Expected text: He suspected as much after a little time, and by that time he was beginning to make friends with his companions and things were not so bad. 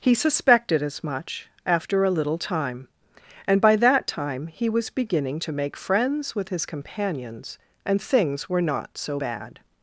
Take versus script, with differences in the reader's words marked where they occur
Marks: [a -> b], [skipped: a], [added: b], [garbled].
He suspected as much after a little time, and by that time he was beginning to make friends with his companions and things were not so bad.